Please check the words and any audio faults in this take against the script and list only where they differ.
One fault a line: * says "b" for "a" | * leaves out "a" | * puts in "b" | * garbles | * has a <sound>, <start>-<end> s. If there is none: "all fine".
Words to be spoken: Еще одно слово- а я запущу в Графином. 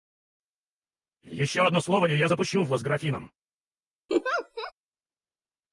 * says "и" for "а"
* puts in "Вас"
* has a laugh, 4.1-4.7 s